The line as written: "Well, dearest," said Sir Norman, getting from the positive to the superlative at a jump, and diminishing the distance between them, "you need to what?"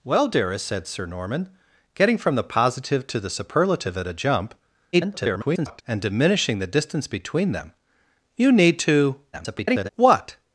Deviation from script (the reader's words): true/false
true